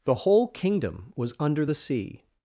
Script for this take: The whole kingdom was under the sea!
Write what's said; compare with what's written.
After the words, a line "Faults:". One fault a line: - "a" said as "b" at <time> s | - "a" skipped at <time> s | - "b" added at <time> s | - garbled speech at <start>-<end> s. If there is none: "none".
The whole kingdom was under the sea!
Faults:
none